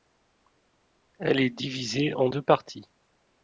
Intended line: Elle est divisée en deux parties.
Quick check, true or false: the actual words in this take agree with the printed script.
true